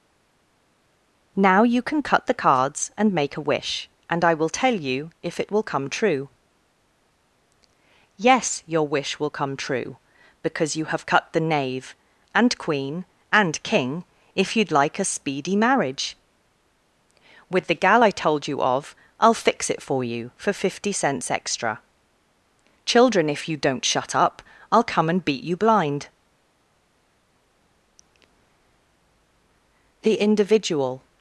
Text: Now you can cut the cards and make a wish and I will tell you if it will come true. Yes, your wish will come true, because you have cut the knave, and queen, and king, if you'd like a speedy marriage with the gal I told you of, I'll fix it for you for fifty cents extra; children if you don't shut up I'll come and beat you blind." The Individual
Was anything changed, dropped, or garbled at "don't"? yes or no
no